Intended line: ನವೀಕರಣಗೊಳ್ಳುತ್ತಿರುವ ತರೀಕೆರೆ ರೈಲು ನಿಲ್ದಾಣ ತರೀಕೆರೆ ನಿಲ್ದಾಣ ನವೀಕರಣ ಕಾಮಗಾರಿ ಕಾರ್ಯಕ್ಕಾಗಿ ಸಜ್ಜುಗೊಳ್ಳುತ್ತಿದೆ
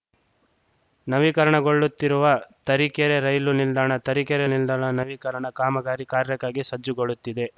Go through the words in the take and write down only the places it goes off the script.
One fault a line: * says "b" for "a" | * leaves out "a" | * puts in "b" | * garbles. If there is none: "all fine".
all fine